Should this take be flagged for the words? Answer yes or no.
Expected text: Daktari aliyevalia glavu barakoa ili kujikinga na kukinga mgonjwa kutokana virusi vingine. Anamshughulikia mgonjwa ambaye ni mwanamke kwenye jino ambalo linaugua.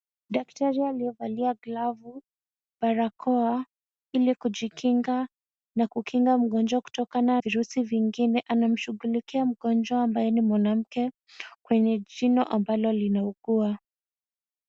no